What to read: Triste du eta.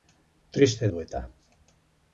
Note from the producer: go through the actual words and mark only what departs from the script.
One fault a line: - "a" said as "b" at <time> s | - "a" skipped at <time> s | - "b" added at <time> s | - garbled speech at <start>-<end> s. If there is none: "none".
none